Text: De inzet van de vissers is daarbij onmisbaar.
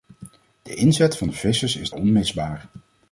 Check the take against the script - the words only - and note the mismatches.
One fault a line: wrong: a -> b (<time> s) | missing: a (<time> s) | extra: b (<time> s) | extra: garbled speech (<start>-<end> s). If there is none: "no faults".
missing: daarbij (1.9 s)